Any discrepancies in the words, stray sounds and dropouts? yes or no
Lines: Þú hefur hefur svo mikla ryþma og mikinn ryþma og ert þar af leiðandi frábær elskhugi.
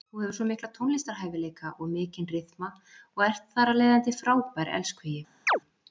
yes